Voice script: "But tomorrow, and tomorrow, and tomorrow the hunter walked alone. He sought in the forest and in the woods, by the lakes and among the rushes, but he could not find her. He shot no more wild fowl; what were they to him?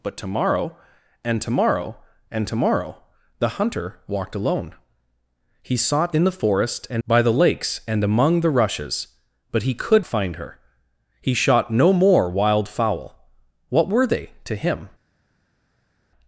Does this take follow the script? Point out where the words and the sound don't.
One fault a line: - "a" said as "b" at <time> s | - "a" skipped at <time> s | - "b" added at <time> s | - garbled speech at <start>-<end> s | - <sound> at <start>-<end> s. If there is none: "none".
- "in the woods" skipped at 7.0 s
- "not" skipped at 10.1 s